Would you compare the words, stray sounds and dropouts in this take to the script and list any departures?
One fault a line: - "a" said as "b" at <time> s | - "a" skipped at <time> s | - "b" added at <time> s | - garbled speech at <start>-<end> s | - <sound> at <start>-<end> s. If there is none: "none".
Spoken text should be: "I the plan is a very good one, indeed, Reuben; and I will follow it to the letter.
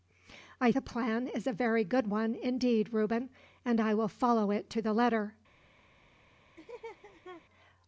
- laugh at 6.6-7.4 s